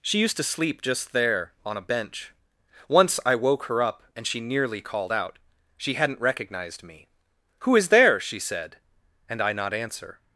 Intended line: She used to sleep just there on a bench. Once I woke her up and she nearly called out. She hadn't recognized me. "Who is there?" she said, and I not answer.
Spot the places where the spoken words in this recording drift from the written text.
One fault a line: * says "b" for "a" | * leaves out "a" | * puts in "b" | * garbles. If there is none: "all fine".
all fine